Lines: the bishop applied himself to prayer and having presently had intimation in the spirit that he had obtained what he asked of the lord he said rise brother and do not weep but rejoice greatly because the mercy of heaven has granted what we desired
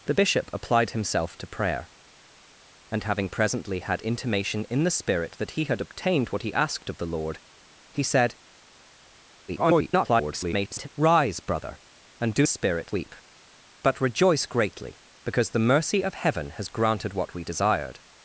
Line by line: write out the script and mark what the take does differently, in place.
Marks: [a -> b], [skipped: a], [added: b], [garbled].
the bishop applied himself to prayer and having presently had intimation in the spirit that he had obtained what he asked of the lord he said [garbled] rise brother and do [not -> spirit] weep but rejoice greatly because the mercy of heaven has granted what we desired